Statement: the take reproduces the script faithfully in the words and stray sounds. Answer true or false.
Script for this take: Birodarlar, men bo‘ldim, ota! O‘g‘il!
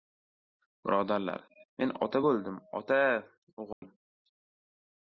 false